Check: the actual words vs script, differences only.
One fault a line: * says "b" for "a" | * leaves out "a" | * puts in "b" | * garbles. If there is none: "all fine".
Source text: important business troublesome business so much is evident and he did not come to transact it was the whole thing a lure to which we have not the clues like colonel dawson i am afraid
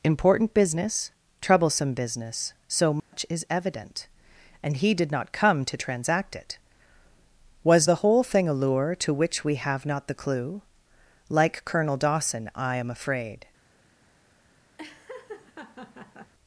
* says "clue" for "clues"